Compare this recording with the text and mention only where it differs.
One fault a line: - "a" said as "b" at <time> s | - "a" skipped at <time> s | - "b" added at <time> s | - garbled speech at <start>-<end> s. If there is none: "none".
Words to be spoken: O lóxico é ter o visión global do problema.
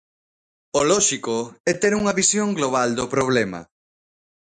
- "o" said as "unha" at 2.0 s